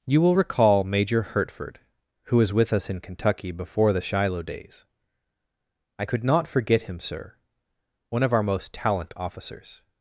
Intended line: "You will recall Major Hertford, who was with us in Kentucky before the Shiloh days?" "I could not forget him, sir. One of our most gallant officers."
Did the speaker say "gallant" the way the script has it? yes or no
no